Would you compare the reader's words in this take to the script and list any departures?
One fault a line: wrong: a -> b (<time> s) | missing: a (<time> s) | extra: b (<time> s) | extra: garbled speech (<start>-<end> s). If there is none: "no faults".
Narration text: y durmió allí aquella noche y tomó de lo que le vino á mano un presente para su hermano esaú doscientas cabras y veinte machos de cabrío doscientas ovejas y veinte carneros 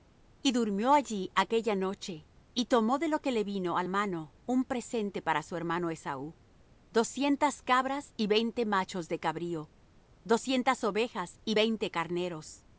no faults